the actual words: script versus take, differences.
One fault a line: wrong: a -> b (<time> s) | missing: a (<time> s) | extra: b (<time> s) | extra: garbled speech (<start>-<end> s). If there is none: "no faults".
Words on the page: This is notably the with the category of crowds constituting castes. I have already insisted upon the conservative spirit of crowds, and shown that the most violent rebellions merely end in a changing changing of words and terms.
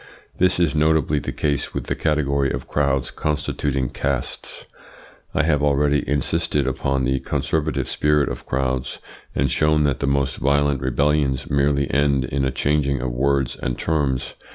extra: case (1.3 s)
missing: changing (13.0 s)